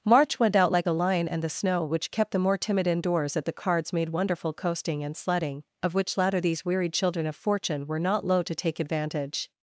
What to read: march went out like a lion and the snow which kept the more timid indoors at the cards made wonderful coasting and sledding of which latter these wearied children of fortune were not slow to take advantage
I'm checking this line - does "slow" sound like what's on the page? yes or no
no